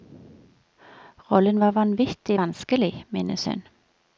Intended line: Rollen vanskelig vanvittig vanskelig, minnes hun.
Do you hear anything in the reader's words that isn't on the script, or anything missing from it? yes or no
yes